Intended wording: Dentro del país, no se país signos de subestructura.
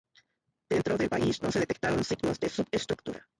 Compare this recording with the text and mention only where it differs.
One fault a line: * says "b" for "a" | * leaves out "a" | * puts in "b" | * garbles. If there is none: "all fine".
* says "detectaron" for "país"